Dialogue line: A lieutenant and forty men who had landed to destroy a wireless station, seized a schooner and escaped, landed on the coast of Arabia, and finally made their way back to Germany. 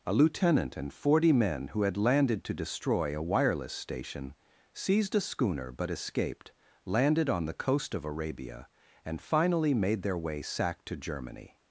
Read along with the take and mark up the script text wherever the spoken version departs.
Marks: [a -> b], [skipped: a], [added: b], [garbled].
A lieutenant and forty men who had landed to destroy a wireless station, seized a schooner [and -> but] escaped, landed on the coast of Arabia, and finally made their way [back -> sack] to Germany.